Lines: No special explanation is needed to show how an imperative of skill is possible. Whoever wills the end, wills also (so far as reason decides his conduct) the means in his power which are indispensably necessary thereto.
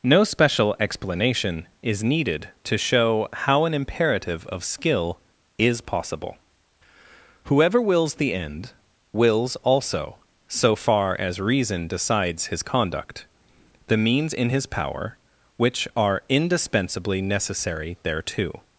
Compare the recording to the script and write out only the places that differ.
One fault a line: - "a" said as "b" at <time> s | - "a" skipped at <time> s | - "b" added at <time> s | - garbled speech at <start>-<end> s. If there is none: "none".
none